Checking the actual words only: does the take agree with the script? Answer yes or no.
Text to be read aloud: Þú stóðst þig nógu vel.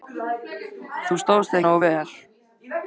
yes